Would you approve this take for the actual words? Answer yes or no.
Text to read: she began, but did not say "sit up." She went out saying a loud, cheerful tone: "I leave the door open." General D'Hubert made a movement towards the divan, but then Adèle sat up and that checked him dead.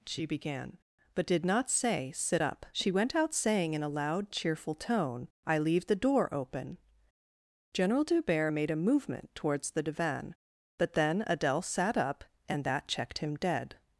no